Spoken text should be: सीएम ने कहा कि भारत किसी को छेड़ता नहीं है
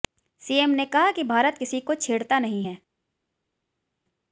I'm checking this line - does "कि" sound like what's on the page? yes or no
yes